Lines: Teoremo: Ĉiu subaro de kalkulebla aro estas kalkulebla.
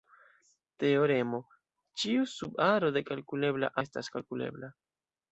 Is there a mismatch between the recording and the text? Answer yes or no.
yes